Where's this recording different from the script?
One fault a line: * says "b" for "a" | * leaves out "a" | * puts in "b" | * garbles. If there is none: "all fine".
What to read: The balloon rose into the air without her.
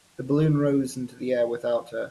all fine